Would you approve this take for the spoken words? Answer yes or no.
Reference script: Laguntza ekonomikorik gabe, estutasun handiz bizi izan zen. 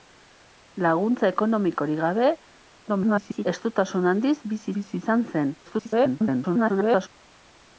no